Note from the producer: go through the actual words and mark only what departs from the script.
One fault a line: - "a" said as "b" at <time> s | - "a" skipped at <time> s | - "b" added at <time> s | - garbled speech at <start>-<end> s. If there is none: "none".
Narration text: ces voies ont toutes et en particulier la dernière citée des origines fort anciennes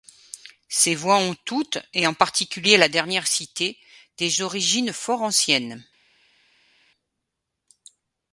none